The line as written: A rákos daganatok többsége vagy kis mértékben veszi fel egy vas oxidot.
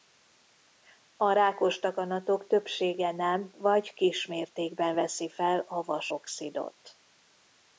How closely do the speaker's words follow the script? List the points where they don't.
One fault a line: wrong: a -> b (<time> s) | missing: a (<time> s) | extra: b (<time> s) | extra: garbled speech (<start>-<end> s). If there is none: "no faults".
extra: nem (3.1 s)
wrong: egy -> a (5.6 s)